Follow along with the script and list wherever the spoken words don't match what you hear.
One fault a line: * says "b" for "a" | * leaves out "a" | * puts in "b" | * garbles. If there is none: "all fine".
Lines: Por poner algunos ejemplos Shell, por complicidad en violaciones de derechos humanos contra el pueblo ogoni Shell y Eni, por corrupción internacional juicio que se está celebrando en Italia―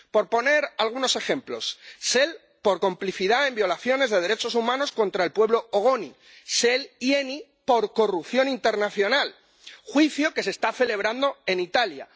all fine